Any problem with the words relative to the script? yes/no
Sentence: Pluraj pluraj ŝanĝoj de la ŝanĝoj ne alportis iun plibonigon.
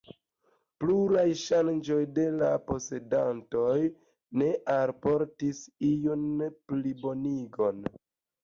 yes